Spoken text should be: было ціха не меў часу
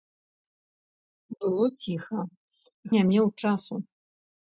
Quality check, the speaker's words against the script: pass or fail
pass